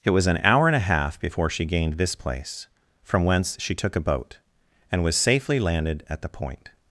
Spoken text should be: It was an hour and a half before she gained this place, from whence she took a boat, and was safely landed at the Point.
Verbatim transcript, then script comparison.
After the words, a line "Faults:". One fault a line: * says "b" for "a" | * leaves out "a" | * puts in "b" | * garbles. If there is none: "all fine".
It was an hour and a half before she gained this place, from whence she took a boat, and was safely landed at the Point.
Faults:
all fine